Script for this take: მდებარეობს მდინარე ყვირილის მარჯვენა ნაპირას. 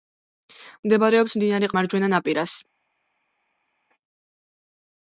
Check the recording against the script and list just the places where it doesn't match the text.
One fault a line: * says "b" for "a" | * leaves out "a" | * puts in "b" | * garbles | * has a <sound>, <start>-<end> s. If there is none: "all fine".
* leaves out "ყვირილის"